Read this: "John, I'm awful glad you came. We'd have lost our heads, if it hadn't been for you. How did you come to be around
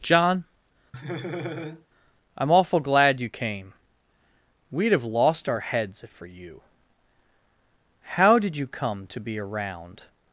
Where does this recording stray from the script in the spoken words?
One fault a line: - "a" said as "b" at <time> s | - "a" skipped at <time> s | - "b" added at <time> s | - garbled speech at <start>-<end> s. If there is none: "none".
- "it hadn't been" skipped at 6.1 s